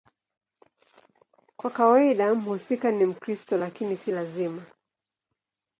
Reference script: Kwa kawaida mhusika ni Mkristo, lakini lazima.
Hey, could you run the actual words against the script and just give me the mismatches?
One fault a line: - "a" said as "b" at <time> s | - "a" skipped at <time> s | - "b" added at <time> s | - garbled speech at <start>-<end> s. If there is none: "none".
- "si" added at 3.9 s